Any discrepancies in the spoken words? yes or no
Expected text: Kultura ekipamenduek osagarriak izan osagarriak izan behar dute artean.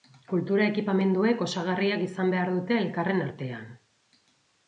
yes